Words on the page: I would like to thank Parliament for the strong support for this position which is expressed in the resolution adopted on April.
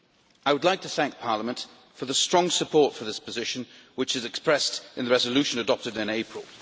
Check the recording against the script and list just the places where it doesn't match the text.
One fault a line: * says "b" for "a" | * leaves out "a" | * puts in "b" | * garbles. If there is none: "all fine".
* says "in" for "on"